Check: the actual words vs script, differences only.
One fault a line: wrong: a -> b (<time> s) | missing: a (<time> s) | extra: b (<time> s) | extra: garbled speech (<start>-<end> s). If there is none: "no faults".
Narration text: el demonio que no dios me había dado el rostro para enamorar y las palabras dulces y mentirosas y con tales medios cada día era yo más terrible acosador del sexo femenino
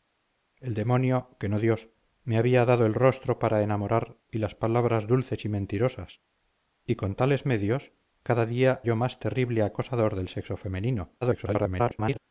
missing: era (8.8 s)
extra: garbled speech (11.2-12.2 s)